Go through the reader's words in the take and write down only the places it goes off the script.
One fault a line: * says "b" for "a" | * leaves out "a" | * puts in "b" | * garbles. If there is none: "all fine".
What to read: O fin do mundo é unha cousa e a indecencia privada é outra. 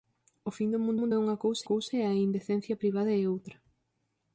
* puts in "mundo"
* puts in "cousa"